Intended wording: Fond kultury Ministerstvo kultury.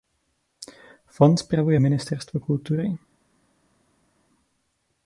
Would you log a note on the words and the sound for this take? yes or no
yes